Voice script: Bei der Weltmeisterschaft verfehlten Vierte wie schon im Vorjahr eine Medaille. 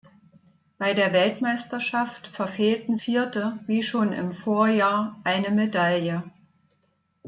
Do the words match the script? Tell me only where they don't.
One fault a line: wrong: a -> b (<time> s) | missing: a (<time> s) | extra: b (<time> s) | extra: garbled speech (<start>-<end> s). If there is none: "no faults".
no faults